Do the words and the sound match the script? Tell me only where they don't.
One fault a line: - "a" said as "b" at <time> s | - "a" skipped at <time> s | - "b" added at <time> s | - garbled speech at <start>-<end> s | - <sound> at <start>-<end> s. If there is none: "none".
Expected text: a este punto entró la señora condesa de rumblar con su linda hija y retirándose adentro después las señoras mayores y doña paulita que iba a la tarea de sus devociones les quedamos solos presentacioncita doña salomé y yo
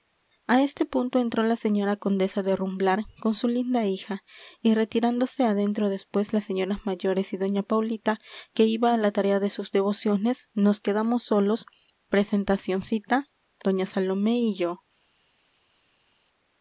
- "les" said as "nos" at 10.5 s